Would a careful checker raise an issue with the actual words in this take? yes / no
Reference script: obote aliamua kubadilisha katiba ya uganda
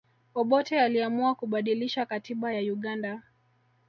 no